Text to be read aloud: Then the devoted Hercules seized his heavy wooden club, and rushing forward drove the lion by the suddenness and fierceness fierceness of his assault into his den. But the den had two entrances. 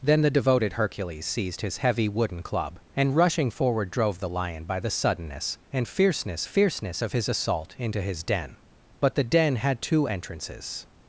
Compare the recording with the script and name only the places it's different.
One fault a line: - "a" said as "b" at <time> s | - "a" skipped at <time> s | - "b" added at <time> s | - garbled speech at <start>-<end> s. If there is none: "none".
none